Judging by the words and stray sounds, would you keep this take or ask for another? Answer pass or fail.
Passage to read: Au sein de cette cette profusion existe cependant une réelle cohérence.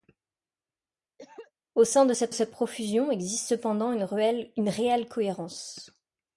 fail